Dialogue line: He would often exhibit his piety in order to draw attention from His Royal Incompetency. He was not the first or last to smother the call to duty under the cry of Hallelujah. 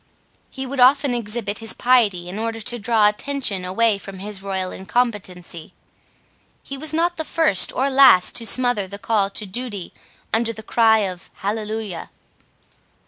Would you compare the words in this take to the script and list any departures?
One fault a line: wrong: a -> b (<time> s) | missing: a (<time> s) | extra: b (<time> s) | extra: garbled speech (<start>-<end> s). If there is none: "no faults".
extra: away (3.6 s)